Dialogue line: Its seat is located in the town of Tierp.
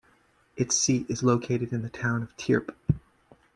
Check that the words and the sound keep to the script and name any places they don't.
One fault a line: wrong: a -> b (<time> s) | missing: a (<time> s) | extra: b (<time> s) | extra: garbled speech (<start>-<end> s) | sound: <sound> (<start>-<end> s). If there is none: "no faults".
no faults